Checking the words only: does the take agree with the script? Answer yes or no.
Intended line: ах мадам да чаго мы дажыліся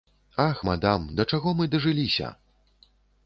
yes